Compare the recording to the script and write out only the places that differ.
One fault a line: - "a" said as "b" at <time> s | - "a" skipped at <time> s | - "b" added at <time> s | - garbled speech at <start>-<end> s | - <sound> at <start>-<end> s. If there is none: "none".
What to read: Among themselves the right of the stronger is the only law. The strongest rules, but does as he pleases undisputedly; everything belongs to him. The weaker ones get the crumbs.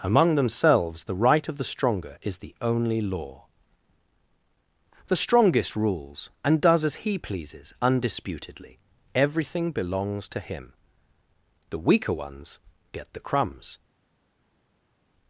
- "but" said as "and" at 6.4 s